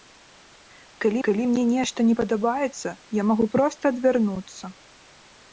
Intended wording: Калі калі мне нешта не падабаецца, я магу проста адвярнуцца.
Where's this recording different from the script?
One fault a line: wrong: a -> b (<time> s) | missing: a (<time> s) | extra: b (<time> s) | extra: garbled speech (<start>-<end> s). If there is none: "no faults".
no faults